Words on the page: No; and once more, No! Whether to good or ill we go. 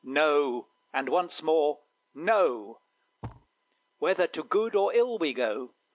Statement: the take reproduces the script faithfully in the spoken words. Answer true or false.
true